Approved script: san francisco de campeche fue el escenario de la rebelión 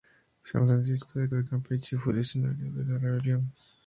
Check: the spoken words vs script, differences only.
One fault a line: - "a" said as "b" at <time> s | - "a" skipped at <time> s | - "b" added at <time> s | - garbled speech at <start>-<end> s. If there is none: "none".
- "de" added at 1.3 s